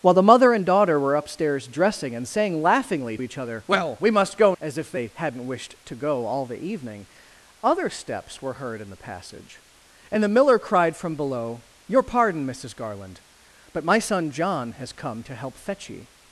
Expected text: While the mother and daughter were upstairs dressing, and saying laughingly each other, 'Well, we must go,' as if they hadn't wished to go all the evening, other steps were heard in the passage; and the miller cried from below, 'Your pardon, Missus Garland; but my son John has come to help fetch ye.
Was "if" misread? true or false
false